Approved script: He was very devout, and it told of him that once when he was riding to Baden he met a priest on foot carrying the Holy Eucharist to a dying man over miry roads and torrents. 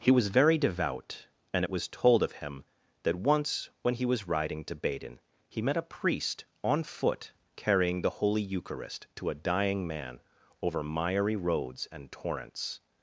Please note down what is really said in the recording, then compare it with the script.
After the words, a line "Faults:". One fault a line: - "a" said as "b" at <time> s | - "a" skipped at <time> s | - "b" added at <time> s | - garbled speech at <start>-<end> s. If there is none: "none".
He was very devout, and it was told of him that once when he was riding to Baden he met a priest on foot carrying the Holy Eucharist to a dying man over miry roads and torrents.
Faults:
- "was" added at 1.7 s